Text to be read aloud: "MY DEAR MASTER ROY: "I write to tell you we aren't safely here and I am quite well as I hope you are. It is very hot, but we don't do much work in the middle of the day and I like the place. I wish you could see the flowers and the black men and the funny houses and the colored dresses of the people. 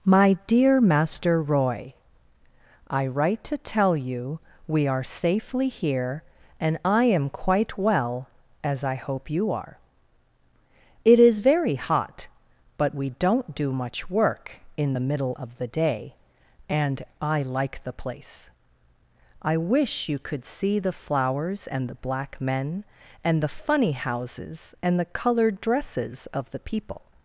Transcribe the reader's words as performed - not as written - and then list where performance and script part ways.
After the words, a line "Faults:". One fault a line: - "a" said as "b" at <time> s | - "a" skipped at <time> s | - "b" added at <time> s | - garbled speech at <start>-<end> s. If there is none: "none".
"MY DEAR MASTER ROY: "I write to tell you we are safely here and I am quite well as I hope you are. It is very hot, but we don't do much work in the middle of the day and I like the place. I wish you could see the flowers and the black men and the funny houses and the colored dresses of the people.
Faults:
- "aren't" said as "are" at 4.9 s